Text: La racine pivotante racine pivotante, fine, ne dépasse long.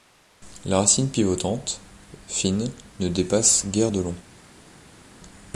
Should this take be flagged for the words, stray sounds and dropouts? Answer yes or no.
yes